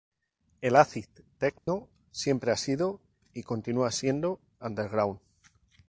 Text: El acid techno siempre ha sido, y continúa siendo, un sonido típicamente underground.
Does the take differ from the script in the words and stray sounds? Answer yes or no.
yes